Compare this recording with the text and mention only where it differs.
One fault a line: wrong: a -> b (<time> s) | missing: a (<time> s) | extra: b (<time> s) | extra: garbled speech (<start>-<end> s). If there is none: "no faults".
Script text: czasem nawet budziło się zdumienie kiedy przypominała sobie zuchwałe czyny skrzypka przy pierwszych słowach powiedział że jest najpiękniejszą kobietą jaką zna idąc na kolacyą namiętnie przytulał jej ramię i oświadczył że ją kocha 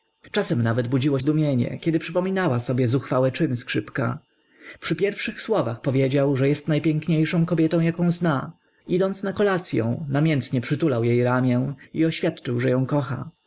missing: się (1.2 s)